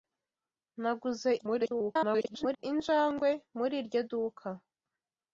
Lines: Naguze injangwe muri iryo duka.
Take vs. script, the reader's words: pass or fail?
fail